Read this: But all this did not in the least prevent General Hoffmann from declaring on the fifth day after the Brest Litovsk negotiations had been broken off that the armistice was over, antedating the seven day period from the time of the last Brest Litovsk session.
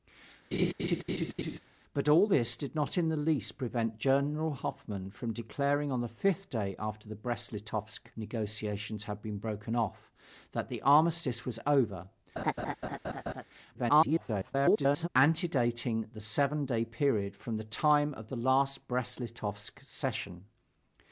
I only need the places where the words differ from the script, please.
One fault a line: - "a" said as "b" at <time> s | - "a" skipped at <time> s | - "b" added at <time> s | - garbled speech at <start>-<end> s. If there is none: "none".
- garbled speech at 13.7-15.1 s